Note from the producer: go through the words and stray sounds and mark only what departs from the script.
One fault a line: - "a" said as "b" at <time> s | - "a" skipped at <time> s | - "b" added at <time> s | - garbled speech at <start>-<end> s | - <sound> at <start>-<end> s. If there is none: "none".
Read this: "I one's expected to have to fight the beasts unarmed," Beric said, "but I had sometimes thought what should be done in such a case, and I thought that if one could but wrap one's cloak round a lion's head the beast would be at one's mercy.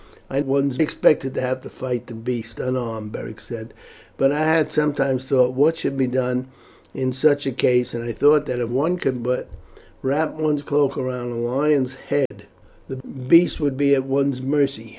- dropout at 12.3-12.3 s